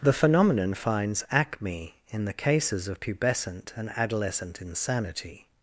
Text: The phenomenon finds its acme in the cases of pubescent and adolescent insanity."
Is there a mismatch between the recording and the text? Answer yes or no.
yes